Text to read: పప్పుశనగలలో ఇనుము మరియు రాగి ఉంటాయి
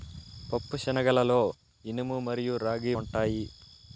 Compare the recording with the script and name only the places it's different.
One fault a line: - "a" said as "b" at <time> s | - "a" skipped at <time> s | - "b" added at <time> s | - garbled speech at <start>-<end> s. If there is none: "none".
none